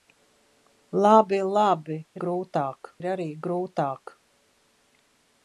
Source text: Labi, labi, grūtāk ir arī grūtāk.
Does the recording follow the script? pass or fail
pass